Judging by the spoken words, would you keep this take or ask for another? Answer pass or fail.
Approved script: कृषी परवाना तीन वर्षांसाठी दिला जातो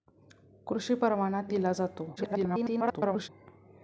fail